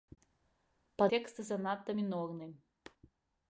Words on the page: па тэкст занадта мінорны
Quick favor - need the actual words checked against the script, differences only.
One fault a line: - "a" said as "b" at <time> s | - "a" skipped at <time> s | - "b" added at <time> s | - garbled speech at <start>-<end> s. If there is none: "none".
none